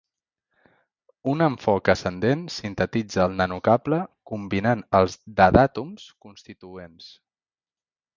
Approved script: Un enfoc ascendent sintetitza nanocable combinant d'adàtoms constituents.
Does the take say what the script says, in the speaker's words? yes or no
no